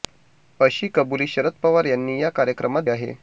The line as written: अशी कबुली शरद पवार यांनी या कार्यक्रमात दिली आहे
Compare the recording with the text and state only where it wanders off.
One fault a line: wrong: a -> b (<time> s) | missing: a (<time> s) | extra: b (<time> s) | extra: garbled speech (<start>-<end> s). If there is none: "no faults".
missing: दिली (2.8 s)